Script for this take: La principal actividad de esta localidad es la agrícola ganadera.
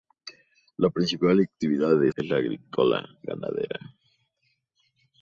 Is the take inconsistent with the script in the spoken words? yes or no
yes